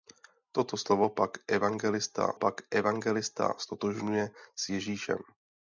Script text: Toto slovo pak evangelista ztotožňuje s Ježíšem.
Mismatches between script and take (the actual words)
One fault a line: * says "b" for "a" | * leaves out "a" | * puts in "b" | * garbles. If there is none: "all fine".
* puts in "pak evangelista"